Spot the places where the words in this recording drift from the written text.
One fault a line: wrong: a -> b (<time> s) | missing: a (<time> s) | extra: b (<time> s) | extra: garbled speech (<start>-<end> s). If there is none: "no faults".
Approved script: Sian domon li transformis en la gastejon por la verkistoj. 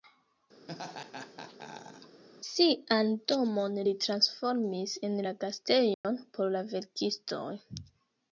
no faults